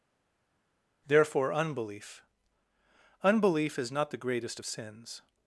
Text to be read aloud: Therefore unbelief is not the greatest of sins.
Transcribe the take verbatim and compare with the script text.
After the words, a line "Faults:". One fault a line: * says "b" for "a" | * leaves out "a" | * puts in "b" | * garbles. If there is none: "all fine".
Therefore unbelief unbelief is not the greatest of sins.
Faults:
* puts in "unbelief"